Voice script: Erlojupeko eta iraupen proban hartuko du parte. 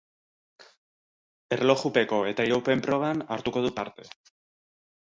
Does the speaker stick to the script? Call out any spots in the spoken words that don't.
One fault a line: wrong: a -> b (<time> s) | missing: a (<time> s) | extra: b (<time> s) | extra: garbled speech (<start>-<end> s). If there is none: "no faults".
no faults